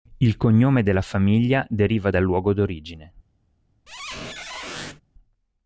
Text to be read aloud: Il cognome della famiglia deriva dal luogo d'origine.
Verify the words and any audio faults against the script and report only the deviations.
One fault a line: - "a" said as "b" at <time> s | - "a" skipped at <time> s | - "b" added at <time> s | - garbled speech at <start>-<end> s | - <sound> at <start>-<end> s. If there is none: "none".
- squeak at 3.9-5.0 s